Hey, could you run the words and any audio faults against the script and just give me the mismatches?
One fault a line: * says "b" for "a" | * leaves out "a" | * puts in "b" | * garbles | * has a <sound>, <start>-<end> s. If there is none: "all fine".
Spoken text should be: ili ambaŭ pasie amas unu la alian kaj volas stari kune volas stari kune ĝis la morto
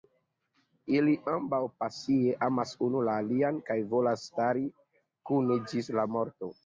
* leaves out "volas stari kune"